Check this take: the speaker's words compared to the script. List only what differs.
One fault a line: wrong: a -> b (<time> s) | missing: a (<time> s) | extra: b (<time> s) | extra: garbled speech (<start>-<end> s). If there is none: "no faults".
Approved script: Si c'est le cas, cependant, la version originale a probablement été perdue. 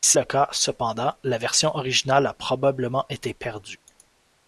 missing: c'est (0.2 s)